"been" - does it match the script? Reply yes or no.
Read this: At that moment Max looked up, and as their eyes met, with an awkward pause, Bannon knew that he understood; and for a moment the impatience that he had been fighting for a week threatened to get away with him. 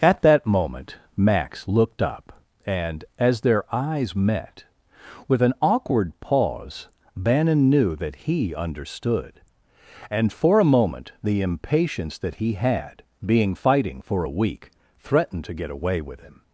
no